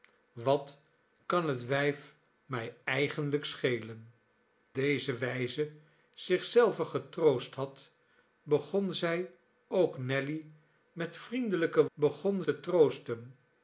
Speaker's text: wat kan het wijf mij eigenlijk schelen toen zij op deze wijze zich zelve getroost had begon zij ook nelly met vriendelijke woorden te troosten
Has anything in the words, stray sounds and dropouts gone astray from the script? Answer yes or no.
yes